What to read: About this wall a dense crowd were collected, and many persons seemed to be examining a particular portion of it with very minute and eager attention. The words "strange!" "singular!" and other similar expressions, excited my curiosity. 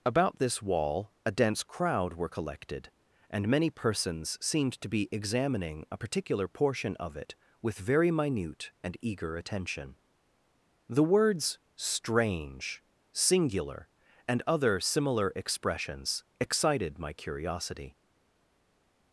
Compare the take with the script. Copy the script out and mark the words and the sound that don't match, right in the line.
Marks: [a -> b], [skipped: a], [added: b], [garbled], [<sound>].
About this wall a dense crowd were collected, and many persons seemed to be examining a particular portion of it with very minute and eager attention. The words "strange!" "singular!" and other similar expressions, excited my curiosity.